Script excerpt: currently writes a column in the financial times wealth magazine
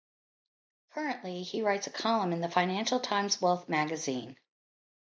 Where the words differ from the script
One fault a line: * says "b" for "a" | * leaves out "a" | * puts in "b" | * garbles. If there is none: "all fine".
* puts in "he"